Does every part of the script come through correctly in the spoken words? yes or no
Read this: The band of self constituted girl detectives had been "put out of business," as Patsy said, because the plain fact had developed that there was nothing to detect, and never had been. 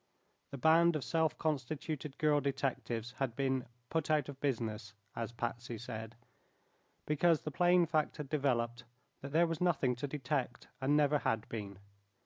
yes